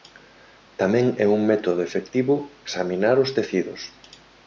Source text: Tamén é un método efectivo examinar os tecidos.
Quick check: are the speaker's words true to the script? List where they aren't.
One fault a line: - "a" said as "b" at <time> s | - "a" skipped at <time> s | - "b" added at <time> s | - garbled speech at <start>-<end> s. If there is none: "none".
none